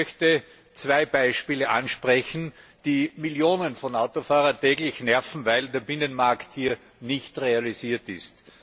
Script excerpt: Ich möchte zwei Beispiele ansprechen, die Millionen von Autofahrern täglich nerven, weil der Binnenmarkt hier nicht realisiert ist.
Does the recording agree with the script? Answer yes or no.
yes